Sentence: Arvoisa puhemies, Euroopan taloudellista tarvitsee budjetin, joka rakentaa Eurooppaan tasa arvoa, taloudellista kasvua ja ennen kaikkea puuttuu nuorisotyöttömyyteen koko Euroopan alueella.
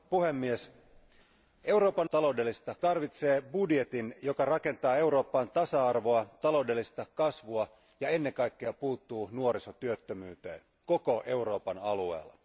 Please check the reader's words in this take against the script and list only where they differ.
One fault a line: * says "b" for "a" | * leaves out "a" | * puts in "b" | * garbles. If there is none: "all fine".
all fine